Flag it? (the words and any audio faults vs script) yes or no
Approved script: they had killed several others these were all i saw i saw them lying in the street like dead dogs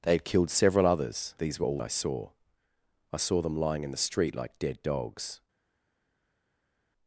no